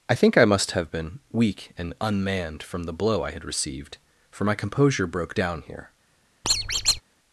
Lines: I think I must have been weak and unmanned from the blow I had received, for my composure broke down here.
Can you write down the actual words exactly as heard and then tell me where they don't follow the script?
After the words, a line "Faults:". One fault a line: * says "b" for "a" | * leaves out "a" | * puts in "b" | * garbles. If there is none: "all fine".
I think I must have been weak and unmanned from the blow I had received, for my composure broke down here.
Faults:
all fine